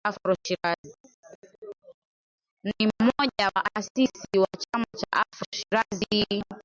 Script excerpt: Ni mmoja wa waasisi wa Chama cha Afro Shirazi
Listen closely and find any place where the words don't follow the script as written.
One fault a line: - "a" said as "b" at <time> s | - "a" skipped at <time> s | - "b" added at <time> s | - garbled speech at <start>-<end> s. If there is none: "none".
- "wa" skipped at 3.5 s